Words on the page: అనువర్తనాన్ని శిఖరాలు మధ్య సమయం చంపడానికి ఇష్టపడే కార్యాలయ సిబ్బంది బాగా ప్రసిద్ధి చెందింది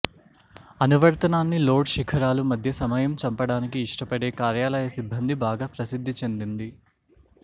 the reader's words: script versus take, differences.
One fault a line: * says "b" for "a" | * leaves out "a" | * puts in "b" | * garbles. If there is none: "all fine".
* puts in "లోడ్"